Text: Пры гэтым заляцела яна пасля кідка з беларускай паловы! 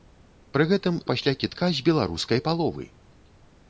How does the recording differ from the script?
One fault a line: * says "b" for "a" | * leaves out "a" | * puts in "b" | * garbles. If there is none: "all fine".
* leaves out "заляцела яна"